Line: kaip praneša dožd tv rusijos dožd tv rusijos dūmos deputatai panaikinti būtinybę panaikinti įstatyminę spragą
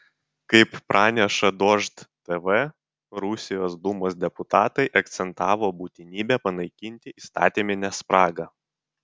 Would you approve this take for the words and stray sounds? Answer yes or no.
no